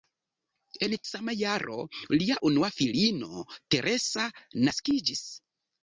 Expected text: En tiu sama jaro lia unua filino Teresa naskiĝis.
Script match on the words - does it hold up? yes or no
no